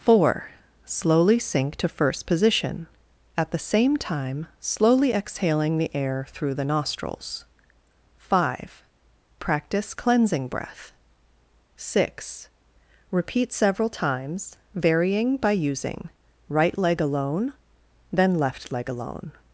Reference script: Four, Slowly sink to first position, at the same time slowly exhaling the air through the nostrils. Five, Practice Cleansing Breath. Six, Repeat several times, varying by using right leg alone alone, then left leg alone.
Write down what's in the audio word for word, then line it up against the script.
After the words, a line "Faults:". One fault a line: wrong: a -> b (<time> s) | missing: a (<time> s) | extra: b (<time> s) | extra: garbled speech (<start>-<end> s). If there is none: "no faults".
Four, Slowly sink to first position, at the same time slowly exhaling the air through the nostrils. Five, Practice Cleansing Breath. Six, Repeat several times, varying by using right leg alone, then left leg alone.
Faults:
missing: alone (17.5 s)